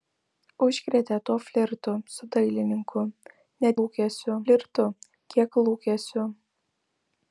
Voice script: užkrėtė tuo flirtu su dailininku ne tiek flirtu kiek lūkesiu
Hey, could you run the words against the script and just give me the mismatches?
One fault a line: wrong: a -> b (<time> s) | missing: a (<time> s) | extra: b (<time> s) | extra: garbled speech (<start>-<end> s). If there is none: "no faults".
wrong: tiek -> lūkesiu (3.8 s)